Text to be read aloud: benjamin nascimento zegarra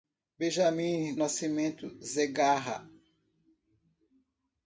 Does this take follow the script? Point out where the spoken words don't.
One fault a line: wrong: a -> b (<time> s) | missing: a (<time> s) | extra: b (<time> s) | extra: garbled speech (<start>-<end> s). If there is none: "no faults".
no faults